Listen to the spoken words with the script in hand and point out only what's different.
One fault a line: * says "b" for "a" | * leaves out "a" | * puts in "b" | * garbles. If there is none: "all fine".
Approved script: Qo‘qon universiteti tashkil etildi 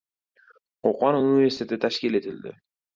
all fine